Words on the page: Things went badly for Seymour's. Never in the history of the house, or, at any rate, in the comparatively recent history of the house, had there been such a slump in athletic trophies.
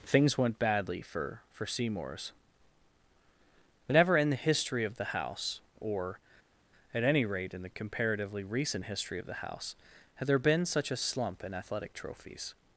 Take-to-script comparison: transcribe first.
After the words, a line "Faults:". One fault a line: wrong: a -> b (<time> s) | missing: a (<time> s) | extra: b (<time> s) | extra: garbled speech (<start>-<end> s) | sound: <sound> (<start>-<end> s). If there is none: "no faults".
Things went badly for for Seymour's. Never in the history of the house, or, at any rate, in the comparatively recent history of the house, had there been such a slump in athletic trophies.
Faults:
extra: for (1.5 s)